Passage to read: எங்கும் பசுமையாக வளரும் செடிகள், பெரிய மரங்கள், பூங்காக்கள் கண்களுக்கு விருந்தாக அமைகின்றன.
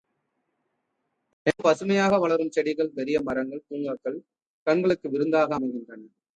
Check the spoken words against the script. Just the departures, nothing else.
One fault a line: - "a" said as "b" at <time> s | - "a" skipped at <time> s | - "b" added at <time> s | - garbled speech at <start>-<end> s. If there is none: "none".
none